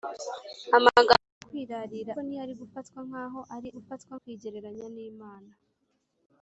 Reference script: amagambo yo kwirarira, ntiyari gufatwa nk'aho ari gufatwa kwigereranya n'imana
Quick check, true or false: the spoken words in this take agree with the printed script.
true